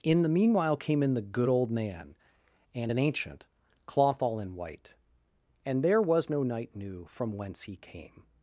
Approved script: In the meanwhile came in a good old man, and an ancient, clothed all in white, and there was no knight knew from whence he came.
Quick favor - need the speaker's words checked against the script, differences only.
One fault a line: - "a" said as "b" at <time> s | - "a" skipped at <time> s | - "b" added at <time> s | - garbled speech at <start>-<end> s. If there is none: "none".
- "a" said as "the" at 1.1 s
- "clothed" said as "cloth" at 3.8 s